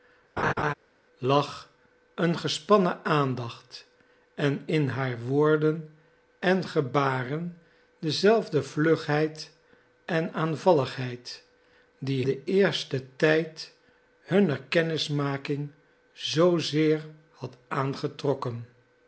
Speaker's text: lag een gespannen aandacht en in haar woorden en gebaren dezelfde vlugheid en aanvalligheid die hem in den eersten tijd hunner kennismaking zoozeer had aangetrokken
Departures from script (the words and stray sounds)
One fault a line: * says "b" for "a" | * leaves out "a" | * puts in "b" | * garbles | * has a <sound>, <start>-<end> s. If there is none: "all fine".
* has a laugh, 0.4-0.7 s
* leaves out "hem in"